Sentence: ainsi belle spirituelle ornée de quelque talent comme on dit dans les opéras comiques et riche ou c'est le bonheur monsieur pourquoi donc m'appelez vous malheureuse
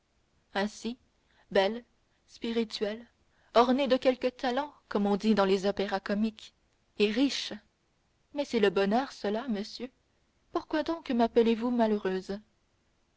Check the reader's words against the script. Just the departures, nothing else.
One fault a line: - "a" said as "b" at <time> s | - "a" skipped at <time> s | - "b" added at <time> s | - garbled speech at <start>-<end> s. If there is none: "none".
- "ou" said as "mais" at 8.3 s
- "cela" added at 9.1 s